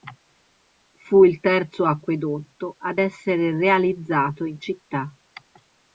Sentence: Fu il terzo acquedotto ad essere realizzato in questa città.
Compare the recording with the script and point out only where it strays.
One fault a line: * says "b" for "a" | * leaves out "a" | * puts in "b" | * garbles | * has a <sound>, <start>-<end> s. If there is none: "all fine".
* leaves out "questa"